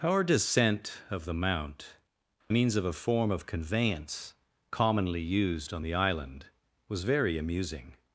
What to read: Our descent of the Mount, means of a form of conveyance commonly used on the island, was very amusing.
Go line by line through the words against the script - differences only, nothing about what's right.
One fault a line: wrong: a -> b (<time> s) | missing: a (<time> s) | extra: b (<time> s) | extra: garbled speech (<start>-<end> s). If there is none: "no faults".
no faults